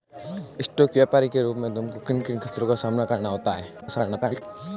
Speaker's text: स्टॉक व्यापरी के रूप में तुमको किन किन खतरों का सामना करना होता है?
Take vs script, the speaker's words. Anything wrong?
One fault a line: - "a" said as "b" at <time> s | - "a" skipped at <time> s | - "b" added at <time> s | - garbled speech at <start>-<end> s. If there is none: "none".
- garbled speech at 3.8-4.4 s